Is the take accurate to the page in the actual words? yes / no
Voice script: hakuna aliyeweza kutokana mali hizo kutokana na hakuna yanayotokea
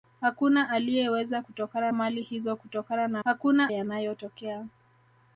yes